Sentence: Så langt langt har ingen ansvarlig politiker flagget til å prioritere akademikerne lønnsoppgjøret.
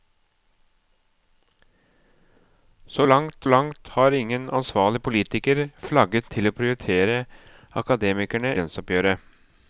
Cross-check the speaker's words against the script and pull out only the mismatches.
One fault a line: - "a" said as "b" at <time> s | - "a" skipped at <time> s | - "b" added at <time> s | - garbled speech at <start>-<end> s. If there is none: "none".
none